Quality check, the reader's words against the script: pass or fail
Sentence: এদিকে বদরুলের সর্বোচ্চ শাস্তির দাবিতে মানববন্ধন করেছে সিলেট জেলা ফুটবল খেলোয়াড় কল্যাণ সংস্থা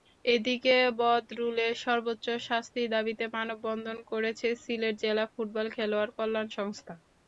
pass